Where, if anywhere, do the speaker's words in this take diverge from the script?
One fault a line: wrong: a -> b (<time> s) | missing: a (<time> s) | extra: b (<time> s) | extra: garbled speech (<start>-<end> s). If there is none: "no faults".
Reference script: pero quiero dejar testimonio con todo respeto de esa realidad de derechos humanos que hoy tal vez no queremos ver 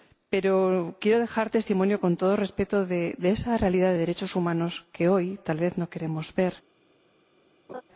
no faults